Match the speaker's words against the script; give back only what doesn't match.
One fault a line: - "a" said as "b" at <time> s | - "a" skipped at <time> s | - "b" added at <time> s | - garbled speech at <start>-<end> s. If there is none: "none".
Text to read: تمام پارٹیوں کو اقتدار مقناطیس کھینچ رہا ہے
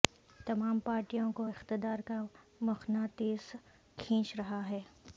- "کا" added at 2.0 s